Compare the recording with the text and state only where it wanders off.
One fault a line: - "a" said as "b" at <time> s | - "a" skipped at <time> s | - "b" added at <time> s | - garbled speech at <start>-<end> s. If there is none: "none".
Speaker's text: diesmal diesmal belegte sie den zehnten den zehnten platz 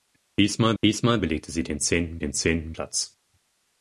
none